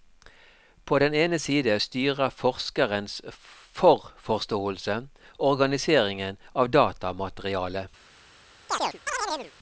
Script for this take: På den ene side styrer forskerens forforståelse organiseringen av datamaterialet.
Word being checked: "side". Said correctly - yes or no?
yes